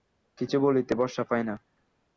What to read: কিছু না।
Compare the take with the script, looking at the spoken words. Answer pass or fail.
fail